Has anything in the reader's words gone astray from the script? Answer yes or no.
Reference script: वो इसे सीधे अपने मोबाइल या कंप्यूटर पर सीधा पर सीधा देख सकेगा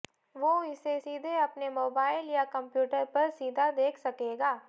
yes